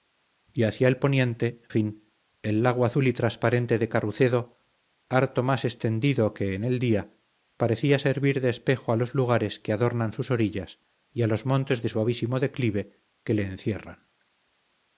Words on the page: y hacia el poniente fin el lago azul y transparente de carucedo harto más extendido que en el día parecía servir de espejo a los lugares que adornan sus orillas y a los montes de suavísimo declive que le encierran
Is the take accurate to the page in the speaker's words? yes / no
yes